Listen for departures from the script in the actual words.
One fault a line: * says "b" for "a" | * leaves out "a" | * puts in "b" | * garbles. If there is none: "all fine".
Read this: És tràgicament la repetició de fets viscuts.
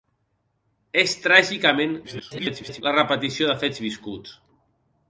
* garbles